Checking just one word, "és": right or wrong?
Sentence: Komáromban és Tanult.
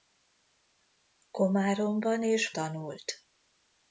right